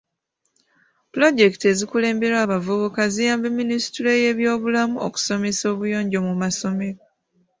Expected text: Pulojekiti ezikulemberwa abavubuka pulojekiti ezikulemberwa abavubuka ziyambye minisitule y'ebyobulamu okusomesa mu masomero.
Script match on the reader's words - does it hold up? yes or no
no